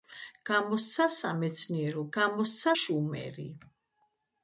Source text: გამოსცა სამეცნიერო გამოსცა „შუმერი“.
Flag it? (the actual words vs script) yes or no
no